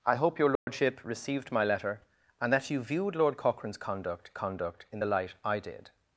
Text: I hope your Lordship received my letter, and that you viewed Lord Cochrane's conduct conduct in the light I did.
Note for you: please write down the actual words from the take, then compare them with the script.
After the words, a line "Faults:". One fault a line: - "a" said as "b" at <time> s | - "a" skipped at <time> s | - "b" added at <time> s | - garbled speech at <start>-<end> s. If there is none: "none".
I hope your Lordship received my letter, and that you viewed Lord Cochrane's conduct conduct in the light I did.
Faults:
none